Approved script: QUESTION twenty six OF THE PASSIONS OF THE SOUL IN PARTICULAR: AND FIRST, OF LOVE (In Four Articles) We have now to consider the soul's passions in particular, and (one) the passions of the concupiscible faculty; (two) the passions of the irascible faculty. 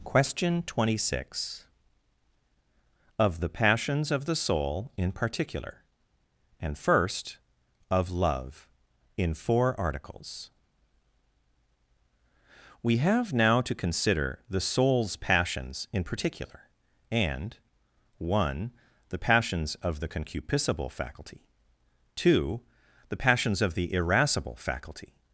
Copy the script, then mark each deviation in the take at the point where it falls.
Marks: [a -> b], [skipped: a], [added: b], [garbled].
QUESTION twenty six OF THE PASSIONS OF THE SOUL IN PARTICULAR: AND FIRST, OF LOVE (In Four Articles) We have now to consider the soul's passions in particular, and (one) the passions of the concupiscible faculty; (two) the passions of the irascible faculty.